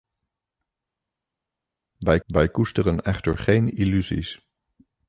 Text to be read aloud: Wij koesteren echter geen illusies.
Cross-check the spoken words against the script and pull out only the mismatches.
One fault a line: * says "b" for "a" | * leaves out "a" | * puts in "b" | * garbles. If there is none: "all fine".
* puts in "wij"